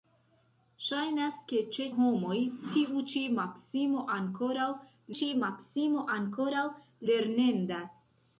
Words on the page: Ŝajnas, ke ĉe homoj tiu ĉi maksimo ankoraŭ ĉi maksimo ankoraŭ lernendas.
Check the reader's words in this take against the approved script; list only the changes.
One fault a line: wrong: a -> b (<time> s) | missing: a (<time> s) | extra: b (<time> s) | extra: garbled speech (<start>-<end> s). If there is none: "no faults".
no faults